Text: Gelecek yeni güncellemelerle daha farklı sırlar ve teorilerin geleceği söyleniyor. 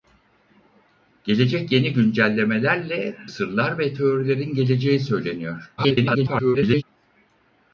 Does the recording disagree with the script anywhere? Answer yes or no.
yes